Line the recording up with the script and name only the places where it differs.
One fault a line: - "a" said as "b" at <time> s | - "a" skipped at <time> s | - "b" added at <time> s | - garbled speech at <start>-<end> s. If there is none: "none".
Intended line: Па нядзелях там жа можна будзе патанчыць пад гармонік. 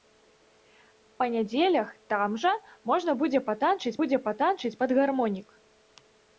- "будзе патанчыць" added at 4.0 s